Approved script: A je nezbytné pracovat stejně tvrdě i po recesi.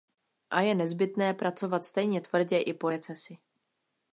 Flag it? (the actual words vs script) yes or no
no